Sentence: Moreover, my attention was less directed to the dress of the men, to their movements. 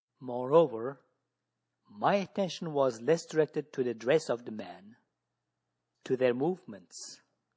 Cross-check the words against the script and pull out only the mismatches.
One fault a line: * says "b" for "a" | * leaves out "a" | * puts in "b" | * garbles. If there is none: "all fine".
all fine